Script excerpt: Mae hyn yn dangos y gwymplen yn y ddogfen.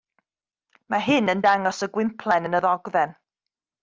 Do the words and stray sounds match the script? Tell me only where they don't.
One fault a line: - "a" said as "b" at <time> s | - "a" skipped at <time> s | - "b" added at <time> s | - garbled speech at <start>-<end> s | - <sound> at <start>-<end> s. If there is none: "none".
none